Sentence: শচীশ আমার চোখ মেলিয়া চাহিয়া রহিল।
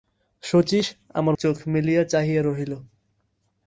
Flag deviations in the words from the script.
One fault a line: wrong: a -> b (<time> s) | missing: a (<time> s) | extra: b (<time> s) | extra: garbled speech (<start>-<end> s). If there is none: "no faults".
no faults